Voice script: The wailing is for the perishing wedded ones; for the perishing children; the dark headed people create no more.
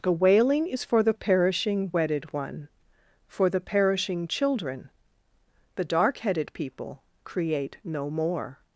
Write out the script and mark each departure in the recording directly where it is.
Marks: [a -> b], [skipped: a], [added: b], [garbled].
The wailing is for the perishing wedded [ones; -> one] for the perishing children; the dark headed people create no more.